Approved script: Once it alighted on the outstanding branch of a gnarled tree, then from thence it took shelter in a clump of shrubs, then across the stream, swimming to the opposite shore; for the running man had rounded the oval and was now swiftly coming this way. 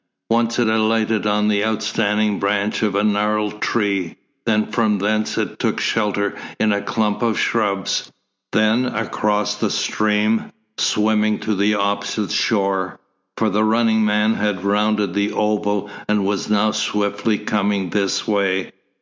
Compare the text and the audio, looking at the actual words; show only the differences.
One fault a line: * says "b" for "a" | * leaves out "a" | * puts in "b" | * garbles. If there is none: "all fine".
all fine